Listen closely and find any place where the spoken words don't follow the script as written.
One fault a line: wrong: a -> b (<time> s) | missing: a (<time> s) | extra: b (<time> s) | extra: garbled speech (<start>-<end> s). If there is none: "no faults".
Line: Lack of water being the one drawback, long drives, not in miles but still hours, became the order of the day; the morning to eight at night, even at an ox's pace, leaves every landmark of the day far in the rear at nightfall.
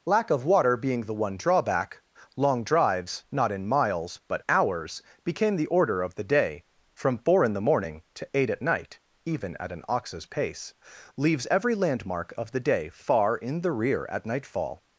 missing: still (4.4 s)
extra: from four in (7.0 s)